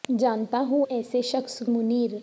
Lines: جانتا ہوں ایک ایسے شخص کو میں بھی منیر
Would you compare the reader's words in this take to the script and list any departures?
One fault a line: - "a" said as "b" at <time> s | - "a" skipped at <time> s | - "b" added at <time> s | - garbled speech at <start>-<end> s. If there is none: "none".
- "ایک" skipped at 0.9 s
- "کو میں بھی" skipped at 1.6 s